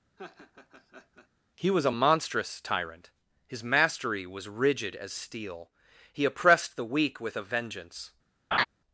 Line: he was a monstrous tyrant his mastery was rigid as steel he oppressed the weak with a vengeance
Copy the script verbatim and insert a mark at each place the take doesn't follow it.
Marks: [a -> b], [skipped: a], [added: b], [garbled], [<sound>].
[laugh] he was a monstrous tyrant his mastery was rigid as steel he oppressed the weak with a vengeance [laugh]